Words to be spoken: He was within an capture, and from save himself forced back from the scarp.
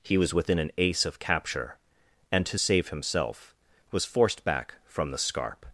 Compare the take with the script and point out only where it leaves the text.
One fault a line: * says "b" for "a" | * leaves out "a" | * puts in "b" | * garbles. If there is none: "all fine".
* puts in "ace of"
* says "to" for "from"
* puts in "was"